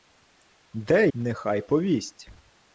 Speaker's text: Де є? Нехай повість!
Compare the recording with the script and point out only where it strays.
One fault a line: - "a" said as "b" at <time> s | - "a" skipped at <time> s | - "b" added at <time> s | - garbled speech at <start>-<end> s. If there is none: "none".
- "є" skipped at 1.1 s